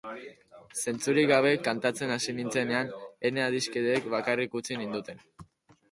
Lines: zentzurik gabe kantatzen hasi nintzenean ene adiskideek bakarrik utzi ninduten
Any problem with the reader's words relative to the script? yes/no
no